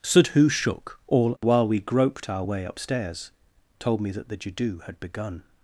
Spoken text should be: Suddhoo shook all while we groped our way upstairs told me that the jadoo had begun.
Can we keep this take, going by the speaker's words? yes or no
yes